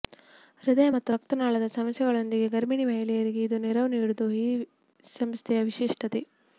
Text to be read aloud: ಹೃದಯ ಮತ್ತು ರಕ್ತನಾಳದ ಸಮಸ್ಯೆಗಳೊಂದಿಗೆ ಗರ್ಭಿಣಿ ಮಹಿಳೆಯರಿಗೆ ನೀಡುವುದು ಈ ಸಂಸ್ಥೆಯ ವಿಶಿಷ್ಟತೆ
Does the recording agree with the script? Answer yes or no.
no